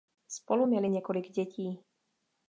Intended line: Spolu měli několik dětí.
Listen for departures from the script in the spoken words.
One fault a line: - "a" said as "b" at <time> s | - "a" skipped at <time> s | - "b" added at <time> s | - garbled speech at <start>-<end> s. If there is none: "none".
none